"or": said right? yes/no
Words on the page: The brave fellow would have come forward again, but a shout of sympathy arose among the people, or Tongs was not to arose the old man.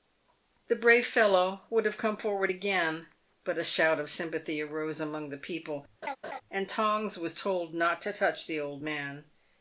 no